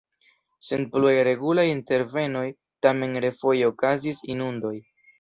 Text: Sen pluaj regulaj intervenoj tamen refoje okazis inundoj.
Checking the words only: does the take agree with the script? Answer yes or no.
yes